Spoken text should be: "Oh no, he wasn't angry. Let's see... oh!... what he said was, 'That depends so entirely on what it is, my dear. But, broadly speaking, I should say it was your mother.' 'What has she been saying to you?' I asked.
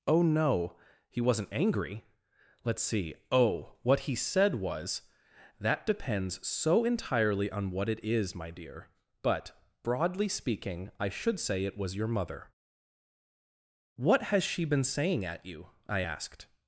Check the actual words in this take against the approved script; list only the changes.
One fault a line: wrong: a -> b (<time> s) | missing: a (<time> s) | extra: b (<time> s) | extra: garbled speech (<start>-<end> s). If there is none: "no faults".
wrong: to -> at (15.2 s)